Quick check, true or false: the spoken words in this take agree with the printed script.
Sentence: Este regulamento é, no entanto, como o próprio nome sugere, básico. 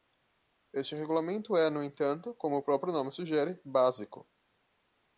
true